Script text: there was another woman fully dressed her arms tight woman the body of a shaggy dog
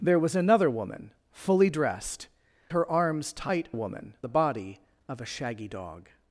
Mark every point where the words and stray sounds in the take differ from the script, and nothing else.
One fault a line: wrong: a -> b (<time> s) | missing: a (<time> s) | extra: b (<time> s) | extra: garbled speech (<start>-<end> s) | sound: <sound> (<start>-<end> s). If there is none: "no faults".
no faults